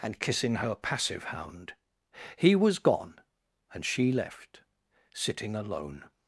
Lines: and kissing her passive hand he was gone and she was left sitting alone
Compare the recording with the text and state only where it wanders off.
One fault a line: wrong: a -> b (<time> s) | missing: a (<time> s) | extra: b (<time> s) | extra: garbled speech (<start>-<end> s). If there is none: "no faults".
wrong: hand -> hound (1.2 s)
missing: was (4.1 s)